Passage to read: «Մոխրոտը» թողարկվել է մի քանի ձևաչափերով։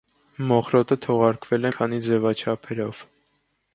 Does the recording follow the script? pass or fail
fail